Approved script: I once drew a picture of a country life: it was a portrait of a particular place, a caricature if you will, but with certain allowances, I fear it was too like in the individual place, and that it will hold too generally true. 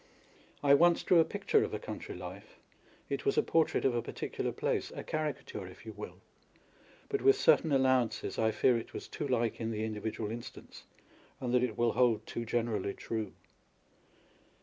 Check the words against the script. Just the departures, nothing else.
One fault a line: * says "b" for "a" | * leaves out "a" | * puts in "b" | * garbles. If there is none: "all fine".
* says "instance" for "place"